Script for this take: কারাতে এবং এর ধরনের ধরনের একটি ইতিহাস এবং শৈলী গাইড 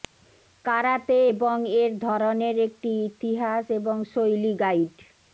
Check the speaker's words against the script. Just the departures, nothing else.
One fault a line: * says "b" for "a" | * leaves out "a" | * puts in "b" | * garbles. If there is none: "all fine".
* leaves out "ধরনের"